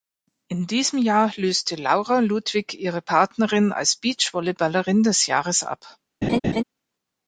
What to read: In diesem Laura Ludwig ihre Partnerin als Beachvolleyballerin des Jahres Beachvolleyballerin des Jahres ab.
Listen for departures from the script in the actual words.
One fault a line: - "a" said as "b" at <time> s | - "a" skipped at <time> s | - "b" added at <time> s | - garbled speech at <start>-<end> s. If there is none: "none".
- "Jahr löste" added at 1.0 s
- "Beachvolleyballerin des Jahres" skipped at 5.6 s